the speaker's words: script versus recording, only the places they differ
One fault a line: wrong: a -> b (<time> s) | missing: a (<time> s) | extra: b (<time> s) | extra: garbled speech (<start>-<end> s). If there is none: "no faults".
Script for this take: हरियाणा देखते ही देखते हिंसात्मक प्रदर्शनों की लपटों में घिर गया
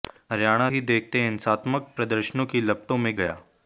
missing: देखते (0.7 s)
missing: घिर (3.2 s)